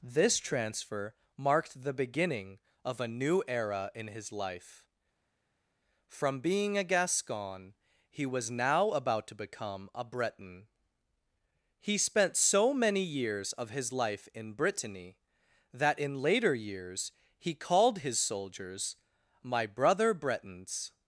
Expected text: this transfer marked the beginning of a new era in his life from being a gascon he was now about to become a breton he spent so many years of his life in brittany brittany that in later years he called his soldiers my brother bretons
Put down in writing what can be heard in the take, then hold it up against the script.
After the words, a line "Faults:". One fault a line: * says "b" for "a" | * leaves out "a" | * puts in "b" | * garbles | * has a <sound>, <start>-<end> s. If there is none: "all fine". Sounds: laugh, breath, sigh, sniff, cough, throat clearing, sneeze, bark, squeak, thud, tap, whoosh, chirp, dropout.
this transfer marked the beginning of a new era in his life from being a gascon he was now about to become a breton he spent so many years of his life in brittany that in later years he called his soldiers my brother bretons
Faults:
* leaves out "brittany"